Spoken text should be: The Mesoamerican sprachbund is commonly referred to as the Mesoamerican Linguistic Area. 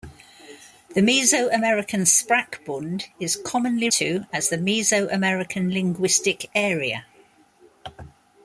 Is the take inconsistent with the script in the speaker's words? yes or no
yes